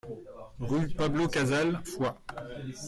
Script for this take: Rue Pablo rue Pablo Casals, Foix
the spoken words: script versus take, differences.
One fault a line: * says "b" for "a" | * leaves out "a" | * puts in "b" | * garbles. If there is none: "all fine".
* leaves out "rue Pablo"